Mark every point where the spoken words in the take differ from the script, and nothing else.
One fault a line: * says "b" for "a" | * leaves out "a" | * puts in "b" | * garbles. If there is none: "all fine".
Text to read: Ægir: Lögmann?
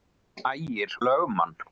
all fine